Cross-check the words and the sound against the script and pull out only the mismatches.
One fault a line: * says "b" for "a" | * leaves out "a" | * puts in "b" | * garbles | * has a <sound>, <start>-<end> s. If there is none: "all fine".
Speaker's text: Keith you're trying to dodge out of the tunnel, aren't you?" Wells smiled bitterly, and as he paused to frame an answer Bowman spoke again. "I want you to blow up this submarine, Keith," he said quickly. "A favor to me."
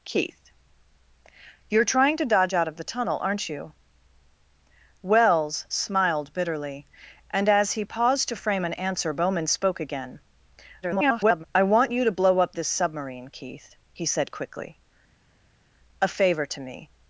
* garbles